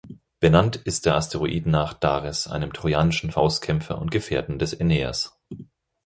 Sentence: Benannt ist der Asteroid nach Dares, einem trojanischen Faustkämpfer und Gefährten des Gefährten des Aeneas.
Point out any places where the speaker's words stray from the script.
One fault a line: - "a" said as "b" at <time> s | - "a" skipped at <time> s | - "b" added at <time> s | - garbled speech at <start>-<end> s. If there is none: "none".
- "Gefährten des" skipped at 4.8 s